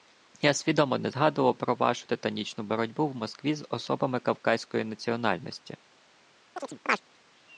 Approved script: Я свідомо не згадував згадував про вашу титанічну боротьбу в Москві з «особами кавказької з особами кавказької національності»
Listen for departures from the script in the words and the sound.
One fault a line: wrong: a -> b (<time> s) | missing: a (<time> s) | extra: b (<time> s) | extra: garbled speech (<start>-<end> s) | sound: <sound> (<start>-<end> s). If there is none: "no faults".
missing: згадував (1.6 s)
missing: з особами кавказької (4.8 s)
sound: chirp (6.6-7.0 s)